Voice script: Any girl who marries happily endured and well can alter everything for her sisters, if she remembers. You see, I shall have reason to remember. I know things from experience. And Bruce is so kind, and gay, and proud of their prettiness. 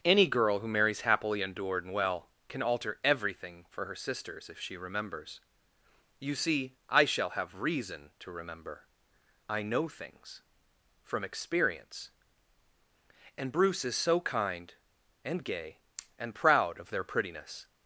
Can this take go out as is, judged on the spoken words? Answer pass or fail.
pass